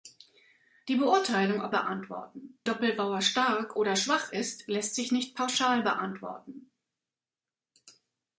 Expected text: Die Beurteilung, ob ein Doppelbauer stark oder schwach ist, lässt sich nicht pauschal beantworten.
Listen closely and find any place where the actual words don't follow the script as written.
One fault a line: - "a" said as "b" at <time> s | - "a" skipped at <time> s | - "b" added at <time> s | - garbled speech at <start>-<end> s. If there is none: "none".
- "ein" said as "beantworten" at 1.7 s